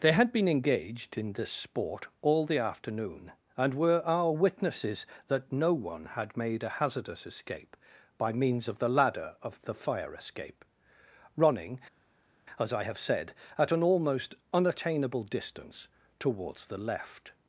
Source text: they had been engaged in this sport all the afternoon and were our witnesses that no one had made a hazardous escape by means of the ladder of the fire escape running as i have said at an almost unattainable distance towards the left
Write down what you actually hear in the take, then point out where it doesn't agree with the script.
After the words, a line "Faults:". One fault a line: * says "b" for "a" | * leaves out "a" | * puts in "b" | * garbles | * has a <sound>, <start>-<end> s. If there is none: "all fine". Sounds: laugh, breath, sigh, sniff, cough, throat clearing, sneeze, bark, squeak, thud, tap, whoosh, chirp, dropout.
they had been engaged in this sport all the afternoon and were our witnesses that no one had made a hazardous escape by means of the ladder of the fire escape running as i have said at an almost unattainable distance towards the left
Faults:
all fine